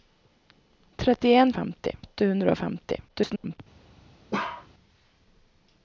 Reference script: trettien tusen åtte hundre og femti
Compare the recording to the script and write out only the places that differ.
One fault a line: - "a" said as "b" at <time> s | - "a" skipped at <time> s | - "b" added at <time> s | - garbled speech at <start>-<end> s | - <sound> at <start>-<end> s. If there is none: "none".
- "tusen" said as "femti" at 1.6 s
- garbled speech at 3.1-3.6 s
- bark at 4.3-4.7 s